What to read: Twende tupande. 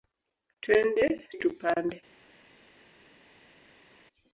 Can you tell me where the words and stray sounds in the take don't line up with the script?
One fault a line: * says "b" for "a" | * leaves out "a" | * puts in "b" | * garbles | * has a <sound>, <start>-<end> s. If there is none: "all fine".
all fine